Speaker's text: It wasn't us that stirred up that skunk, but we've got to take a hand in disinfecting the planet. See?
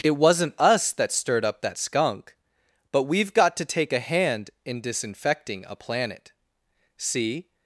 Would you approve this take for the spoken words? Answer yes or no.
no